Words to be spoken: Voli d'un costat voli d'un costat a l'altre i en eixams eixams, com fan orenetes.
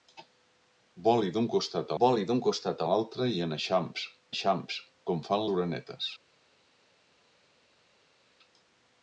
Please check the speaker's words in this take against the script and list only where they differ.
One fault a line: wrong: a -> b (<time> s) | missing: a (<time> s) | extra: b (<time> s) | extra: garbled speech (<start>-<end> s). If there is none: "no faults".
no faults